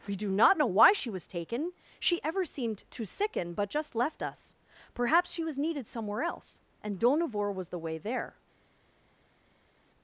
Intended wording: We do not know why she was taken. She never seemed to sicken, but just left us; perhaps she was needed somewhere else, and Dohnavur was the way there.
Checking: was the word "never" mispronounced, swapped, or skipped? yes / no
yes